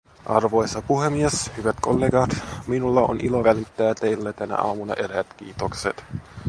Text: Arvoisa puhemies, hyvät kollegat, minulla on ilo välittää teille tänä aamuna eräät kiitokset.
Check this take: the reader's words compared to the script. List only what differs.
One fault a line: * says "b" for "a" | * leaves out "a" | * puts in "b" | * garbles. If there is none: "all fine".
all fine